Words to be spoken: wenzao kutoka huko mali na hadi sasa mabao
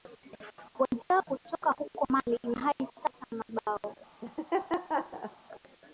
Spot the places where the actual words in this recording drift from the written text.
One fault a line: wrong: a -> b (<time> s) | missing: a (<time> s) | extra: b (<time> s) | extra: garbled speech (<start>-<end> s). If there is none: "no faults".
no faults